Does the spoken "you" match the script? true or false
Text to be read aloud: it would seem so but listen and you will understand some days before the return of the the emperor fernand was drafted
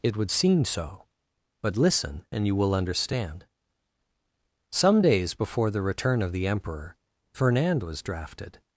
true